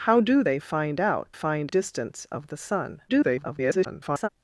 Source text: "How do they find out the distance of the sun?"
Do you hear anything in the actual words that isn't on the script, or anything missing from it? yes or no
yes